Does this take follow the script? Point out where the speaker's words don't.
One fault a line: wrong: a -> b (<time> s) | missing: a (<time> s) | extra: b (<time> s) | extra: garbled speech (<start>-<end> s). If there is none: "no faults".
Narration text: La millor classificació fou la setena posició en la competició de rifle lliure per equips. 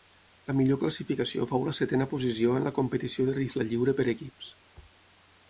no faults